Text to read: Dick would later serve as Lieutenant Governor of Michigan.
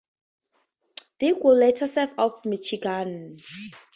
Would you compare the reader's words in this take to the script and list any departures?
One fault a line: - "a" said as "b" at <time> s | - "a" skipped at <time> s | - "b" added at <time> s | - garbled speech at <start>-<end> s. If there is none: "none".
- "as Lieutenant Governor" skipped at 2.1 s